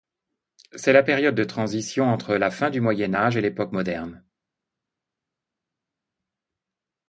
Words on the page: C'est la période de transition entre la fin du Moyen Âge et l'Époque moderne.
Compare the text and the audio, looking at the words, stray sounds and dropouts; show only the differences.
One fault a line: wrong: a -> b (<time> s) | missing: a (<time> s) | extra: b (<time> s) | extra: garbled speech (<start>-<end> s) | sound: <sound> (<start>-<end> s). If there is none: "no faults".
no faults